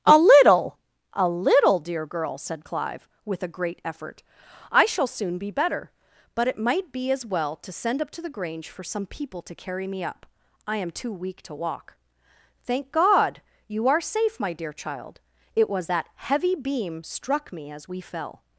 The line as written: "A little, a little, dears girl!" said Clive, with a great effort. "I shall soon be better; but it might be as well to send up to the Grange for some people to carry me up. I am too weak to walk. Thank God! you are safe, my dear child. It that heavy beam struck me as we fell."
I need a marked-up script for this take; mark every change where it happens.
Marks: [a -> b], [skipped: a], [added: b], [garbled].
"A little, a little, [dears -> dear] girl!" said Clive, with a great effort. "I shall soon be better; but it might be as well to send up to the Grange for some people to carry me up. I am too weak to walk. Thank God! you are safe, my dear child. It [added: was] that heavy beam struck me as we fell."